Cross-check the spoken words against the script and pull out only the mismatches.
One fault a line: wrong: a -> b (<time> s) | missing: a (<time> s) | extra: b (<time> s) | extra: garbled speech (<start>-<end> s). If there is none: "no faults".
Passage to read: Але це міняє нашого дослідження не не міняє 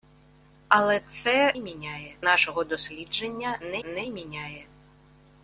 no faults